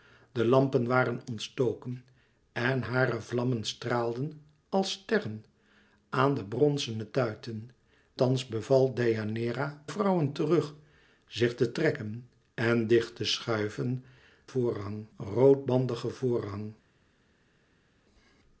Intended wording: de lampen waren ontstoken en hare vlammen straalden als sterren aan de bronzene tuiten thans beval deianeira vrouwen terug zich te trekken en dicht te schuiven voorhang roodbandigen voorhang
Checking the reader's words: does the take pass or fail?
pass